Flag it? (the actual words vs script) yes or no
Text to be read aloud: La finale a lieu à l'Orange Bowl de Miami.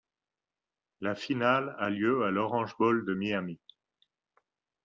no